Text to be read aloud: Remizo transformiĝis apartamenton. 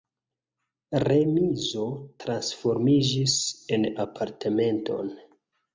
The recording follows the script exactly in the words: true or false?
false